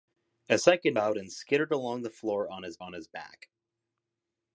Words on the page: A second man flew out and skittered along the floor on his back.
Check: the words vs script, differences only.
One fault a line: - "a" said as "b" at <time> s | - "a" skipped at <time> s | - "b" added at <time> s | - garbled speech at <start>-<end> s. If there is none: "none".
- "man flew" skipped at 1.0 s
- "on his" added at 2.8 s